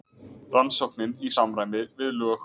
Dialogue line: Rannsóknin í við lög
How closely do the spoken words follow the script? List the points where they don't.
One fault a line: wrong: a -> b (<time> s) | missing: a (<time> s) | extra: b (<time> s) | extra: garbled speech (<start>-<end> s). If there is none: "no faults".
extra: samræmi (1.3 s)